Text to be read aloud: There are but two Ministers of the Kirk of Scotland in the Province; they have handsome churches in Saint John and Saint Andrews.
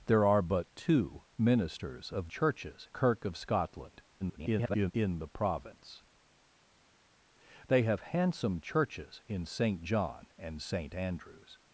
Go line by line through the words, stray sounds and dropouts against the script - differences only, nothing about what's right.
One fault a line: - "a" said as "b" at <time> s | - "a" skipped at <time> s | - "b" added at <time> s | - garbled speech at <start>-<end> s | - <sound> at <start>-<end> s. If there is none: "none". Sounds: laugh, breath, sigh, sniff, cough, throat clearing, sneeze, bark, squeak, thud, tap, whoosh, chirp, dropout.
- "the" said as "churches" at 2.3 s
- garbled speech at 4.2-4.9 s